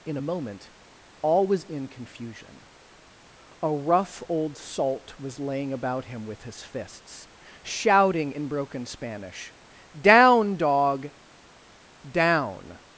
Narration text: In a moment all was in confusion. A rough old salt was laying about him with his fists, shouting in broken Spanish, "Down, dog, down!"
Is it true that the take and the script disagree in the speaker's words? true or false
false